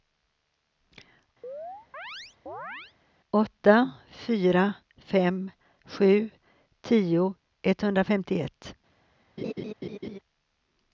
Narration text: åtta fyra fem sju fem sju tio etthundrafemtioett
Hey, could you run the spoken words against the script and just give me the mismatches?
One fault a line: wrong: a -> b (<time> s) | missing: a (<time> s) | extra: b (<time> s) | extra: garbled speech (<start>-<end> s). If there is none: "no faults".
missing: fem sju (6.3 s)